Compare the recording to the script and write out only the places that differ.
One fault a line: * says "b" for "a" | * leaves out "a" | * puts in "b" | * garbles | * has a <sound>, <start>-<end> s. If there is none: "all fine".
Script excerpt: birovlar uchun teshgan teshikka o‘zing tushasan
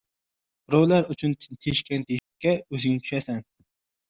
* has a dropout, 2.2-2.3 s